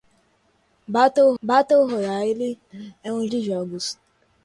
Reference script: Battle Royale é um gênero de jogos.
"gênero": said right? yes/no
no